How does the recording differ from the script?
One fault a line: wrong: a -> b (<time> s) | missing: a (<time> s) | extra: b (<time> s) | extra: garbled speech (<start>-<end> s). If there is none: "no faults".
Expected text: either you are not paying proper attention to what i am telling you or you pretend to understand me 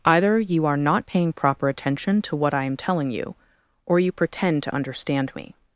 no faults